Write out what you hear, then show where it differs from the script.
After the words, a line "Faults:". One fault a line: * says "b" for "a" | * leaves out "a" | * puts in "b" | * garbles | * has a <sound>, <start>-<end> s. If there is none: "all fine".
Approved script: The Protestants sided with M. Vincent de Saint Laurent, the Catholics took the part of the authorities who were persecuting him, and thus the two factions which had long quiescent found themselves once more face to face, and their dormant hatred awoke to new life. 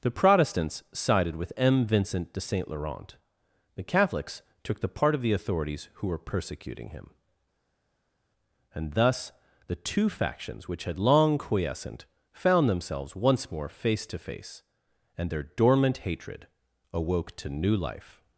The Protestants sided with M. Vincent de Saint Laurent, the Catholics took the part of the authorities who were persecuting him, and thus the two factions which had long quiescent found themselves once more face to face, and their dormant hatred awoke to new life.
Faults:
all fine